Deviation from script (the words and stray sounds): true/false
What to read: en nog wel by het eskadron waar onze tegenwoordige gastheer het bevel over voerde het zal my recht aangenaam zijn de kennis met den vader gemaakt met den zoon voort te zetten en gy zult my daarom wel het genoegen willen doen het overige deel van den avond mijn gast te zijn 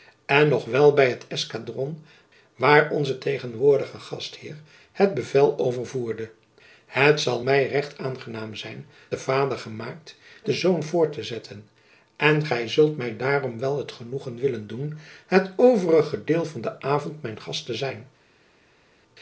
true